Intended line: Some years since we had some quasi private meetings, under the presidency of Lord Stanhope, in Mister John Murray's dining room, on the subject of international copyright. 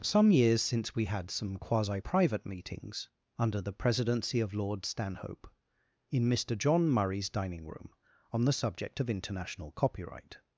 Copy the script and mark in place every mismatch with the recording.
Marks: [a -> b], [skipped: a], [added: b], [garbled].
Some years since we had some quasi private meetings, under the presidency of Lord Stanhope, in Mister John Murray's dining room, on the subject of international copyright.